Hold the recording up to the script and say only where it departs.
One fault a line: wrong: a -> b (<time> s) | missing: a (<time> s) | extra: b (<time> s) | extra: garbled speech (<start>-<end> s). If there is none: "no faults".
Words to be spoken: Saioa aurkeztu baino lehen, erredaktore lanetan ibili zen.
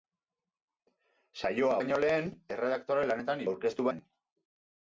missing: aurkeztu (1.8 s)
wrong: ibili -> aurkeztu (3.5 s)